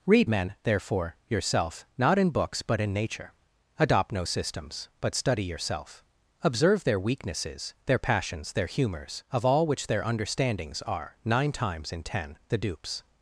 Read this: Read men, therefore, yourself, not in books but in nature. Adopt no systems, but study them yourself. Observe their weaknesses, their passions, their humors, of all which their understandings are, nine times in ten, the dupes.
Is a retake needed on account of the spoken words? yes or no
yes